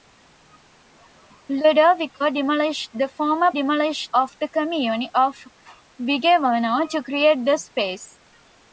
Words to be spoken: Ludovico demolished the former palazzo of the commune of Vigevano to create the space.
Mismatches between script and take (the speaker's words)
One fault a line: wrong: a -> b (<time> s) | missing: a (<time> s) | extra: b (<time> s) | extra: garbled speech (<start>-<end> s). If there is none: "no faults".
wrong: palazzo -> demolished (3.5 s)